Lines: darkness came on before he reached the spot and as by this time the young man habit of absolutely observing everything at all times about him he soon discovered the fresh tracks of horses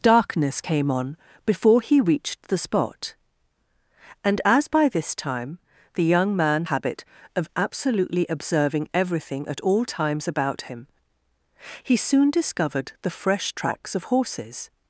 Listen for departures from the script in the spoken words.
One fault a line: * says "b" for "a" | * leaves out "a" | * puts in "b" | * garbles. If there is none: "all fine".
all fine